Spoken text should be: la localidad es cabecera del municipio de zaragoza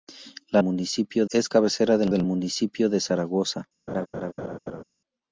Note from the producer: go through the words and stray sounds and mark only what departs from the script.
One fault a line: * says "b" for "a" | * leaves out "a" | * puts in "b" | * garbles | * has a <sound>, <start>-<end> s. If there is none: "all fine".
* says "municipio" for "localidad"
* puts in "del"
* has a laugh, 3.9-4.8 s